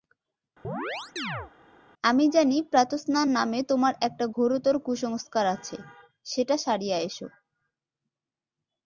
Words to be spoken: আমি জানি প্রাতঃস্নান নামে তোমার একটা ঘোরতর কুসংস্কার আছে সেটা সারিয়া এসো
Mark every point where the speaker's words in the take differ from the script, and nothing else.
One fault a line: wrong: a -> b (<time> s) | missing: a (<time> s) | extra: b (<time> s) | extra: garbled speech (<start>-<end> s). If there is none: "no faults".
no faults